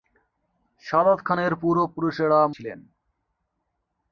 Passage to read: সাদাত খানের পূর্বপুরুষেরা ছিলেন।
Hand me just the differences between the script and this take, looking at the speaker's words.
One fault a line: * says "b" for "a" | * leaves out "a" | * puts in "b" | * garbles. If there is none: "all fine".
all fine